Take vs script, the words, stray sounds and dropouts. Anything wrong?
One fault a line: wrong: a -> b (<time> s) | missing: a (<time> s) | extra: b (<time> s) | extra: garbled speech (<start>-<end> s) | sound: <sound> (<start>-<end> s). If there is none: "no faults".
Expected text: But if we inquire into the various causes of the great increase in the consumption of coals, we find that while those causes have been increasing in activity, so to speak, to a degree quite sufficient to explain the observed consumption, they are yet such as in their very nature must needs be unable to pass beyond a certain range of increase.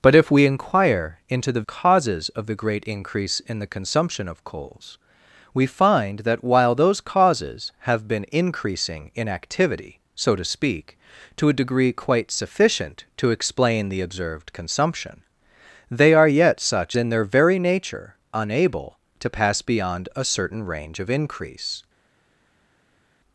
missing: various (1.6 s)
missing: as (17.0 s)
missing: must needs be (18.1 s)